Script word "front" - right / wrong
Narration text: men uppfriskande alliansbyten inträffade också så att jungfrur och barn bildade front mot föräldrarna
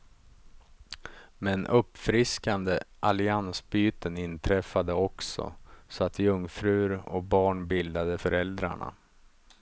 wrong